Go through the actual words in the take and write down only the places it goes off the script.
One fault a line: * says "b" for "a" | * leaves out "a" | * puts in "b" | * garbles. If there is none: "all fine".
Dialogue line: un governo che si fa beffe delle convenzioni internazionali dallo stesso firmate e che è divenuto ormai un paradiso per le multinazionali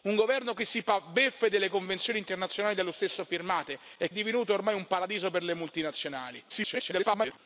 * leaves out "che"
* garbles